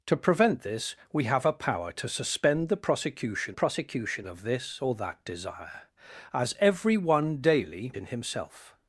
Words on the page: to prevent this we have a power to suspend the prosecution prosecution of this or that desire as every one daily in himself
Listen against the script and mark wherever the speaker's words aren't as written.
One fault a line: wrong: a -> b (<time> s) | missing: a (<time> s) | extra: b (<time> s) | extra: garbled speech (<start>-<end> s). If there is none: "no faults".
no faults